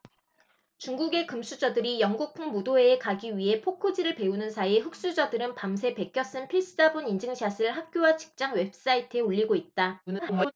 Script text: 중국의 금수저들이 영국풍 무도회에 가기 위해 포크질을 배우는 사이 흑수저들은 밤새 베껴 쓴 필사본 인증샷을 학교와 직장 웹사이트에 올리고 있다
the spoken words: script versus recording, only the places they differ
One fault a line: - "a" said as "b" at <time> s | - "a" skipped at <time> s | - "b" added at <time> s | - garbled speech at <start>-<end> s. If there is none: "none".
- garbled speech at 10.1-10.5 s